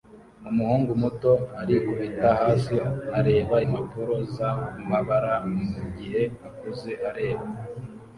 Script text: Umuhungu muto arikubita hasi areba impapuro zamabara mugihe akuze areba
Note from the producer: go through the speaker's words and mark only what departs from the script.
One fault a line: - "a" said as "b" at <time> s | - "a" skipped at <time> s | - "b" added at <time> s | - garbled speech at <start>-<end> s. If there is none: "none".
none